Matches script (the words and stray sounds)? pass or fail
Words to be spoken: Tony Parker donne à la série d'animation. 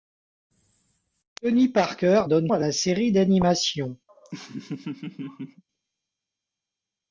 fail